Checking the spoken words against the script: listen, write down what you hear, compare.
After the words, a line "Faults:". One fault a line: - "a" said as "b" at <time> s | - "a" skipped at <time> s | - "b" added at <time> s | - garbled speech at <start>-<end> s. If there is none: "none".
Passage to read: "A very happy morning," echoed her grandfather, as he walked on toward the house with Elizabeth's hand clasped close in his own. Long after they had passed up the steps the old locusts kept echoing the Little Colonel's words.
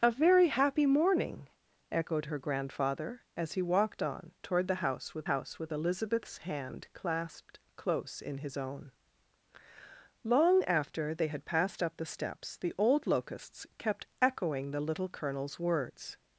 "A very happy morning," echoed her grandfather, as he walked on toward the house with house with Elizabeth's hand clasped close in his own. Long after they had passed up the steps the old locusts kept echoing the Little Colonel's words.
Faults:
- "house with" added at 5.3 s